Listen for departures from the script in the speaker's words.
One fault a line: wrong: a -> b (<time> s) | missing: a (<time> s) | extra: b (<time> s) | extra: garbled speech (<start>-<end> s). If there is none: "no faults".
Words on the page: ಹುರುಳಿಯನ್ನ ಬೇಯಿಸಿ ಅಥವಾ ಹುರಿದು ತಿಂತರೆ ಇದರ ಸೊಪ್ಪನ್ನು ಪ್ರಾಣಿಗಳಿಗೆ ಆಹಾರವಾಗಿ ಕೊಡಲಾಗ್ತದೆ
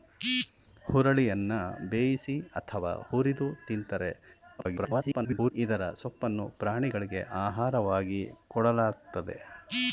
extra: garbled speech (4.6-5.5 s)